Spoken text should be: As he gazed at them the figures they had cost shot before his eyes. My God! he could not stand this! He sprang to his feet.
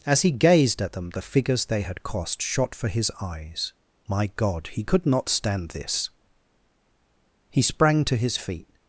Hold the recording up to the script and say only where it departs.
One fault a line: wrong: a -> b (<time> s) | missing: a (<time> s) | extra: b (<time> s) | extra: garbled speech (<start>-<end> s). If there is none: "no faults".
wrong: before -> for (2.7 s)